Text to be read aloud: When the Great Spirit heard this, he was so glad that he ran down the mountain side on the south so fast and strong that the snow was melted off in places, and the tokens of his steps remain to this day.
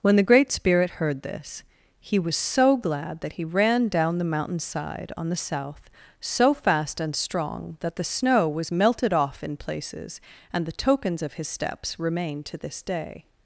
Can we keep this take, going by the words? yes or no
yes